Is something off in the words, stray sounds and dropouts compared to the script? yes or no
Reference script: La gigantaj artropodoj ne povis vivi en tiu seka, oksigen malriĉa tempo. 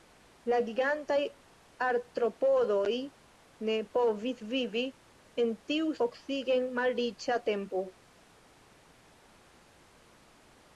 yes